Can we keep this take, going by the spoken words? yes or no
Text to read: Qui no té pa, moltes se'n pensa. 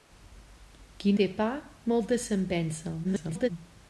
no